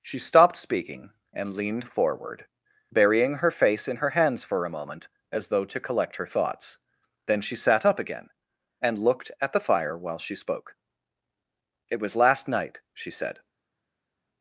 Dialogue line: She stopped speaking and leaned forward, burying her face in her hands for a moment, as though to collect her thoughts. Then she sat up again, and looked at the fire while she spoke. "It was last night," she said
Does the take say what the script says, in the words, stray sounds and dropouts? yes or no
yes